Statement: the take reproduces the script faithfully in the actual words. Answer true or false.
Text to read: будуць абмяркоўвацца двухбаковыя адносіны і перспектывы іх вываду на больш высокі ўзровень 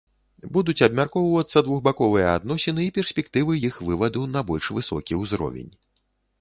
true